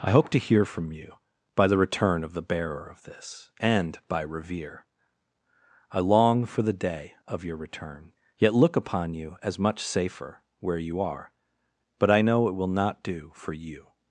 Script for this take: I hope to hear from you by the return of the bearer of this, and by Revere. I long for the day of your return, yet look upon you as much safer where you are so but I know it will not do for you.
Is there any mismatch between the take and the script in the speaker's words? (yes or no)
yes